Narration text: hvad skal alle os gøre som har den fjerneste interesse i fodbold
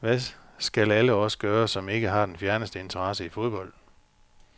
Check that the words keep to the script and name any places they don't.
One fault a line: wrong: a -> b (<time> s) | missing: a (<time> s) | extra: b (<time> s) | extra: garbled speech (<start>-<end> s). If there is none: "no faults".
extra: ikke (1.9 s)